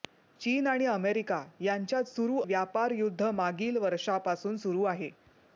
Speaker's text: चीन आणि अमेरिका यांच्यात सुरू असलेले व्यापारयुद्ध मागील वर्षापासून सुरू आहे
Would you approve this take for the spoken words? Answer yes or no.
no